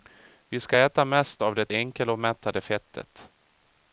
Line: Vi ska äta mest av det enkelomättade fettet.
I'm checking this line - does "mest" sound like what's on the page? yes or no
yes